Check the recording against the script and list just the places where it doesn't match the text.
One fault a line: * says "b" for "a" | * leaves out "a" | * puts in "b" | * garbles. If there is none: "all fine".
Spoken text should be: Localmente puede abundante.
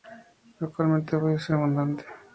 * puts in "ser"